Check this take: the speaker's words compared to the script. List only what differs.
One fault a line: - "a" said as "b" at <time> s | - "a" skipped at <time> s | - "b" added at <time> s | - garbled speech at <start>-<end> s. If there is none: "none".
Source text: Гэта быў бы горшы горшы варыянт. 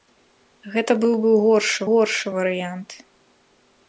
none